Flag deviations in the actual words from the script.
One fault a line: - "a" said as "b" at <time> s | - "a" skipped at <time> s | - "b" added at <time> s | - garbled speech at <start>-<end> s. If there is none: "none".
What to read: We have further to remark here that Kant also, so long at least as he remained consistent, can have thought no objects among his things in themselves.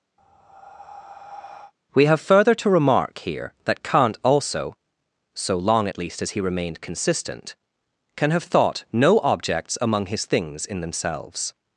none